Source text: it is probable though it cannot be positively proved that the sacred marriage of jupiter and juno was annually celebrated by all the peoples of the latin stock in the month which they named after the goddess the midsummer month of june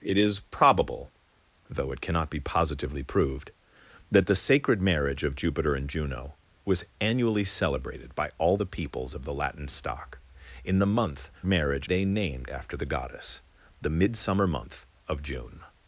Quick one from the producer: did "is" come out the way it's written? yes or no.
yes